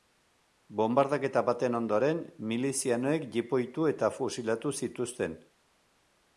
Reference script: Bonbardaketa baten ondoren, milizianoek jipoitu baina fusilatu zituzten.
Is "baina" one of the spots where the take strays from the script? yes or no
yes